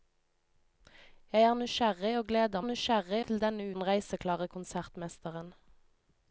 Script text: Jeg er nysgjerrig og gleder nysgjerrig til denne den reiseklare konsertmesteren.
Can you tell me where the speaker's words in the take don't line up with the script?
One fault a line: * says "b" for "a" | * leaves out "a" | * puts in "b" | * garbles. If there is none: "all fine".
all fine